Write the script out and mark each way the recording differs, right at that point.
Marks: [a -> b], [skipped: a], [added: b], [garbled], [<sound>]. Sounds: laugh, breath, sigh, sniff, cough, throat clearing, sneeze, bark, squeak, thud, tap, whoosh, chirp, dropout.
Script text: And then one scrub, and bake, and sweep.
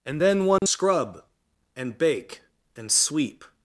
And then one [dropout] scrub, and bake, and sweep.